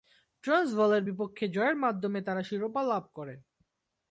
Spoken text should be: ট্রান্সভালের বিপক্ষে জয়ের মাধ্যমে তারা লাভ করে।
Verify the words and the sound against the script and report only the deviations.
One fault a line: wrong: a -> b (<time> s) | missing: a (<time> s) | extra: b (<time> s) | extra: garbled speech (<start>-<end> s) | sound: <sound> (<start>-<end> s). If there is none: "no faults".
extra: শিরোপা (2.4 s)